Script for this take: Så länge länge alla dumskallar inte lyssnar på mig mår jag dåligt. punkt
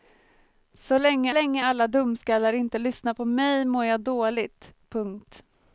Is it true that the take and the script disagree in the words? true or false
false